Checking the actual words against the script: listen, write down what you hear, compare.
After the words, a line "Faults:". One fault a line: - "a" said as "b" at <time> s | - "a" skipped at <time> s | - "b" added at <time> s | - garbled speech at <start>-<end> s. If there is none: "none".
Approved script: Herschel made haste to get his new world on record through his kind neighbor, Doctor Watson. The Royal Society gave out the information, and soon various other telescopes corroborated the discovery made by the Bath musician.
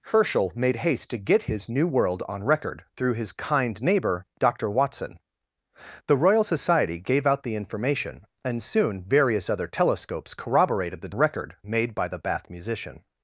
Herschel made haste to get his new world on record through his kind neighbor, Doctor Watson. The Royal Society gave out the information, and soon various other telescopes corroborated the record made by the Bath musician.
Faults:
- "discovery" said as "record" at 11.1 s